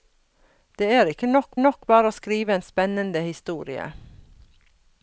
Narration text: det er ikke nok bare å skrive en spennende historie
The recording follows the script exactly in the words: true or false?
false